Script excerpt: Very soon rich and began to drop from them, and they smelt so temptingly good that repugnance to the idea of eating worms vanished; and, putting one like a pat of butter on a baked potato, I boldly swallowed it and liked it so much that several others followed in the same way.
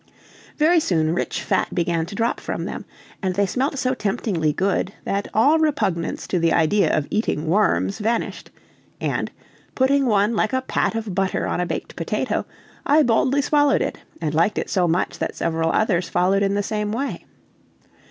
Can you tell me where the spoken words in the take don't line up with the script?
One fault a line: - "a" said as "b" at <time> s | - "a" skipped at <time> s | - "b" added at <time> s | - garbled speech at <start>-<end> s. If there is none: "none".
- "and" said as "fat" at 1.4 s
- "all" added at 5.3 s